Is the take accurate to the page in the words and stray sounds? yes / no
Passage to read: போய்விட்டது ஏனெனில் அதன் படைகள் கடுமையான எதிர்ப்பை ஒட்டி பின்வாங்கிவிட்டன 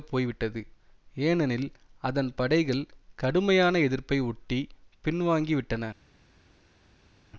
yes